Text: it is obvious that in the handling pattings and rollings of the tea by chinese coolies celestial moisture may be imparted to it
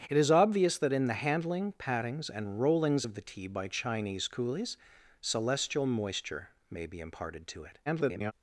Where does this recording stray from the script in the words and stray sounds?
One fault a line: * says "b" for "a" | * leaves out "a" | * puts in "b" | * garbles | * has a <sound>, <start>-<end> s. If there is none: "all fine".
* garbles